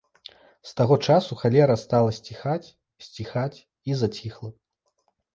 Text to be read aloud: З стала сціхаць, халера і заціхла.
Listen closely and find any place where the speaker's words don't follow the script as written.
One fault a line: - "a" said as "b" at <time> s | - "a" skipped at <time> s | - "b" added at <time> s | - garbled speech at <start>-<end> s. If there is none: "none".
- "таго часу халера" added at 0.8 s
- "халера" said as "сціхаць" at 3.1 s